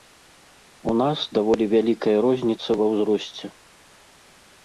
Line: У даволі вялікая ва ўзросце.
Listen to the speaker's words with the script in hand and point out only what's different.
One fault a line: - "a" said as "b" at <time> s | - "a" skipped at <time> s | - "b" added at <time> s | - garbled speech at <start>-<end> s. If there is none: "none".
- "нас" added at 1.0 s
- "розніца" added at 2.3 s